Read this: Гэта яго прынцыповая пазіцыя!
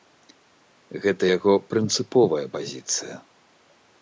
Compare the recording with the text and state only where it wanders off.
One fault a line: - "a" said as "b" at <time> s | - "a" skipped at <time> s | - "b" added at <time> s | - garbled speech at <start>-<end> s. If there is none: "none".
none